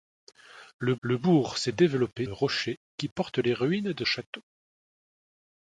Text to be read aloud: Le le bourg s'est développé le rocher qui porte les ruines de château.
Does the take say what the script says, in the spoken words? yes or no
yes